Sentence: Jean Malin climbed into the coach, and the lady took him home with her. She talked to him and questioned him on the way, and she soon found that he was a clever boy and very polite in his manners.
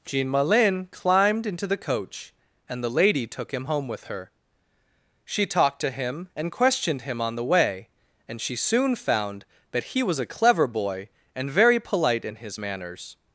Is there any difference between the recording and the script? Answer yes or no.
no